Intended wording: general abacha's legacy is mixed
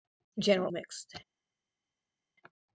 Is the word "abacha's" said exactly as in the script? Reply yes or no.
no